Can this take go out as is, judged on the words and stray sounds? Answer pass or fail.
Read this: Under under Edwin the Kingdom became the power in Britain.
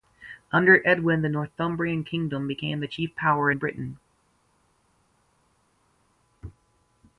fail